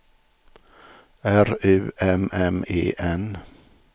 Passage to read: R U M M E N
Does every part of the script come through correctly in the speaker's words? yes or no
yes